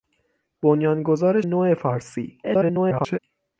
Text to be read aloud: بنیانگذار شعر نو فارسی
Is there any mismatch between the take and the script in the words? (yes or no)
yes